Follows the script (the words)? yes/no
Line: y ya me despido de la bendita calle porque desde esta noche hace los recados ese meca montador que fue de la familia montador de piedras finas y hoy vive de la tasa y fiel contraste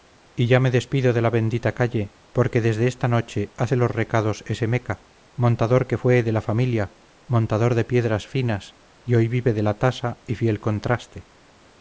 yes